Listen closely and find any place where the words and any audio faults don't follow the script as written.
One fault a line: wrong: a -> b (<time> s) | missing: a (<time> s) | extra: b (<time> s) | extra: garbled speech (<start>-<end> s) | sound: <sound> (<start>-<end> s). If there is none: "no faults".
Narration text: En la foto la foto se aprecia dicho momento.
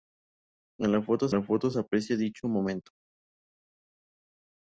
no faults